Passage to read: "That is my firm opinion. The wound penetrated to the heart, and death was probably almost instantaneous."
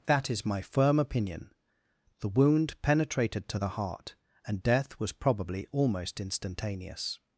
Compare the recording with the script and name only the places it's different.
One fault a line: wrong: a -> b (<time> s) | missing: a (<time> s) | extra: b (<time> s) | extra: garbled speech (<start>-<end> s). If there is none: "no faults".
no faults